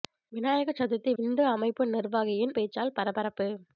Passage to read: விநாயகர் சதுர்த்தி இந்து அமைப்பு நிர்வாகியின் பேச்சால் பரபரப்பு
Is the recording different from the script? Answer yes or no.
no